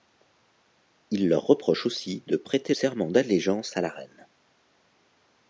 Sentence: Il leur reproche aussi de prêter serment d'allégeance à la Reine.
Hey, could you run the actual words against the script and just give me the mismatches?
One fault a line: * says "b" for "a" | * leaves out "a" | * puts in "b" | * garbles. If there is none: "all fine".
all fine